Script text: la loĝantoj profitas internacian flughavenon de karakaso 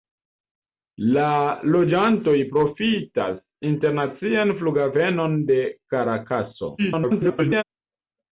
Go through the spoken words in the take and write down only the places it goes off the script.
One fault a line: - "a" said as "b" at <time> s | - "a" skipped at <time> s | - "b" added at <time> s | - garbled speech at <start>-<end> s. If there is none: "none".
- garbled speech at 6.8-7.6 s